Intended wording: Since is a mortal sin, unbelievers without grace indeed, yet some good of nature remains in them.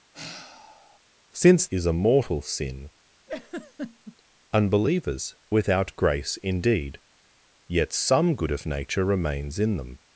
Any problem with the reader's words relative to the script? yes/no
no